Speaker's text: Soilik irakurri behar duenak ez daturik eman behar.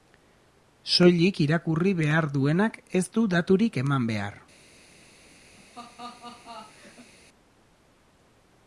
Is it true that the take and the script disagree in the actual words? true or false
true